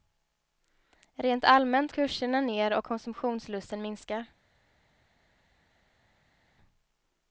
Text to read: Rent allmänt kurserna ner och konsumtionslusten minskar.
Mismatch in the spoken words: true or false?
false